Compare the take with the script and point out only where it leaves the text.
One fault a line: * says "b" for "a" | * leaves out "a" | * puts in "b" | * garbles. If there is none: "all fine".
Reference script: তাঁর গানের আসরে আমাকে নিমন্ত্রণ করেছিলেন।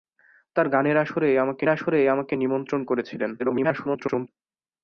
* puts in "আসরে আমাকে"
* garbles